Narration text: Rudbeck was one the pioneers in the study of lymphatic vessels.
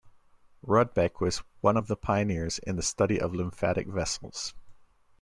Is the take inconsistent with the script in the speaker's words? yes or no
yes